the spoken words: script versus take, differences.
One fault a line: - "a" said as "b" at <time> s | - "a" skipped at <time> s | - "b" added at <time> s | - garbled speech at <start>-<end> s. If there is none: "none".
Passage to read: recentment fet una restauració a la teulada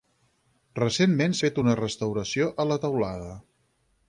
none